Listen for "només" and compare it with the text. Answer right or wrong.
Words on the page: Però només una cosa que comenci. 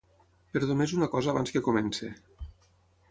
right